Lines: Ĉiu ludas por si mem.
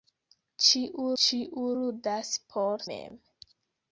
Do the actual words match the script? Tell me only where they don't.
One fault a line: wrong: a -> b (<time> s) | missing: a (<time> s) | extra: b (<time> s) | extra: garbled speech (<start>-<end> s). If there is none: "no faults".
extra: ĉiu (1.2 s)
missing: si (2.8 s)